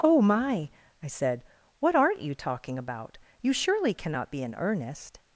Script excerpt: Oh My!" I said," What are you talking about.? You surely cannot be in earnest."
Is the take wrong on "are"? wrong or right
wrong